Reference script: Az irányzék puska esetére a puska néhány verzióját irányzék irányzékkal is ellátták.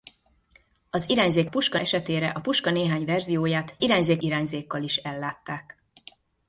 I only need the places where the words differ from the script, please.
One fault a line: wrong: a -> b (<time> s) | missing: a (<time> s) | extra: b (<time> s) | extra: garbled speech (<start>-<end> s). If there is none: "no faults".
no faults